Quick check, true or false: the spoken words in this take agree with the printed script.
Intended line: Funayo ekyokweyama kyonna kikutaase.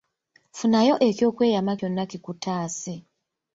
true